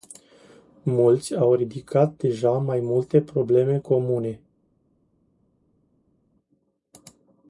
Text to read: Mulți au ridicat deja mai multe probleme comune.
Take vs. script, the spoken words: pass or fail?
pass